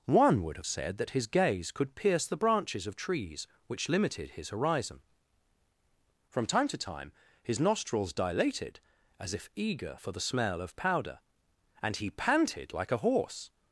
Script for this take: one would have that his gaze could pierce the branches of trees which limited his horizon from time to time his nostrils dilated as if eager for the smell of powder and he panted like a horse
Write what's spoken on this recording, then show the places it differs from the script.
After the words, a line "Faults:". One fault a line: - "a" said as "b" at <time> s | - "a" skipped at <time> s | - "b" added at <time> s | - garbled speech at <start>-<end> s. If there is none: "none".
one would have said that his gaze could pierce the branches of trees which limited his horizon from time to time his nostrils dilated as if eager for the smell of powder and he panted like a horse
Faults:
- "said" added at 0.6 s